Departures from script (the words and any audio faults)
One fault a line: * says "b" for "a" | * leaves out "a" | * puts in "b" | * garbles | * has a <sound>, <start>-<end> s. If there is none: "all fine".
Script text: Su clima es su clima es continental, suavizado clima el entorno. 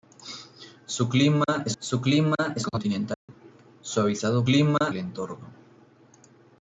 * has a dropout, 3.1-3.3 s